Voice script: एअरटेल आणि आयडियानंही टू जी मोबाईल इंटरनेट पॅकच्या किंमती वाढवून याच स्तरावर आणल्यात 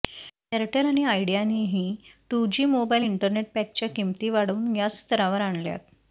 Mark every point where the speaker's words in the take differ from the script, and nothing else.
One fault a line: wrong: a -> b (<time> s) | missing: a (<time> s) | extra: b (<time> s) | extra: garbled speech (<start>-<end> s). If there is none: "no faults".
no faults